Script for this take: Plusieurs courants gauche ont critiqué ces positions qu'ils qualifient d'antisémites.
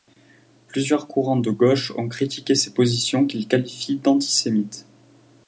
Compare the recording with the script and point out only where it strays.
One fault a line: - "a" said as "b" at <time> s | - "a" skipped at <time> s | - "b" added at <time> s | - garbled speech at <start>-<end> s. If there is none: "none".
- "de" added at 1.4 s